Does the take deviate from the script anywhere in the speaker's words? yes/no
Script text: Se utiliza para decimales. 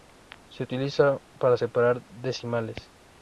yes